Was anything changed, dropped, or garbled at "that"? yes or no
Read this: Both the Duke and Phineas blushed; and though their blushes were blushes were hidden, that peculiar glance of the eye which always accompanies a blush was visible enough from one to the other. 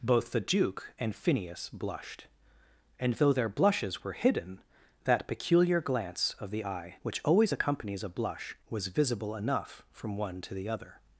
no